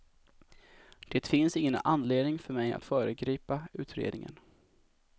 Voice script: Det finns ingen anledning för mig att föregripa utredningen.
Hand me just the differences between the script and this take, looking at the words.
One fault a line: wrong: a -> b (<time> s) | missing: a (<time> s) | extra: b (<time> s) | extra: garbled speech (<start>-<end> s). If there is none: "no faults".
no faults